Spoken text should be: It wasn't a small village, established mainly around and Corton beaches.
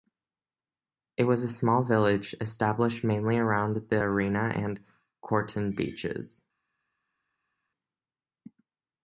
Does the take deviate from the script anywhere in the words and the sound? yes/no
yes